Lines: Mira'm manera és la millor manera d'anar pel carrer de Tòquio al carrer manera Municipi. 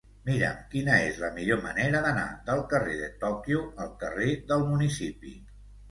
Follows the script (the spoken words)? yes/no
no